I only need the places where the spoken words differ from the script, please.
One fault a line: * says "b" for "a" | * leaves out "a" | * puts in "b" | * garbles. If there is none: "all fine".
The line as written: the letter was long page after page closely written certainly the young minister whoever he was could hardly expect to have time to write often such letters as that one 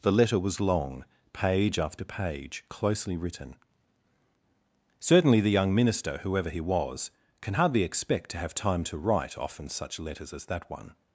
* says "can" for "could"